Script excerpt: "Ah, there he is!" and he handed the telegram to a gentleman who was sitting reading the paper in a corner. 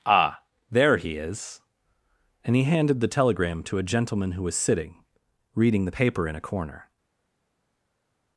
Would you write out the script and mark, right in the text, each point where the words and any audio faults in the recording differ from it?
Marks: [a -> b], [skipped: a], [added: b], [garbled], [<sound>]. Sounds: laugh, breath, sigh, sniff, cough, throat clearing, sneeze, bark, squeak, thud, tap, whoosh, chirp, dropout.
"Ah, there he is!" and he handed the telegram to a gentleman who was sitting reading the paper in a corner.